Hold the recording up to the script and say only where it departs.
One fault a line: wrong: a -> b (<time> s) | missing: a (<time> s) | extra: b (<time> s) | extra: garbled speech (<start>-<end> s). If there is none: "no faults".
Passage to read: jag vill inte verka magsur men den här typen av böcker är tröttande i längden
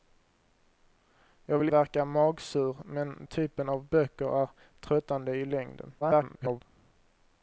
missing: inte (1.7 s)
missing: den här (3.3 s)
extra: garbled speech (6.0-6.6 s)